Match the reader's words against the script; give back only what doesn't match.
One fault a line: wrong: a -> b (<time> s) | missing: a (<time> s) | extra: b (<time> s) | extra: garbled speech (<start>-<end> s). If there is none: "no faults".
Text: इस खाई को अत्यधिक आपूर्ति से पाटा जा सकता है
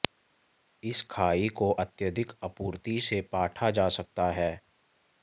no faults